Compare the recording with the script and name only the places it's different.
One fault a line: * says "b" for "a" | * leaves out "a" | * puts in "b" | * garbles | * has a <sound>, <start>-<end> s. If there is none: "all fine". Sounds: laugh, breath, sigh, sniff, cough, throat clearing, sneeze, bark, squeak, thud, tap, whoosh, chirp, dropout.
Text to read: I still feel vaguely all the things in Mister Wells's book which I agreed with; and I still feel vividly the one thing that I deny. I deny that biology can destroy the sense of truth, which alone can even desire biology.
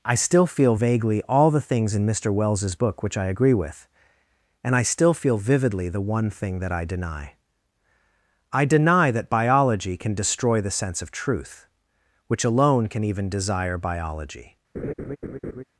* says "agree" for "agreed"
* has a laugh, 14.7-15.6 s